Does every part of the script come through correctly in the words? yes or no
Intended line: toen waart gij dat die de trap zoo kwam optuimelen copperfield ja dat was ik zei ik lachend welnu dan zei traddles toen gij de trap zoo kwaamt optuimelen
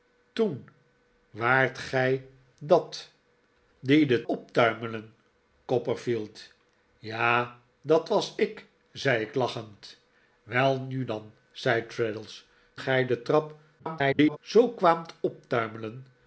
no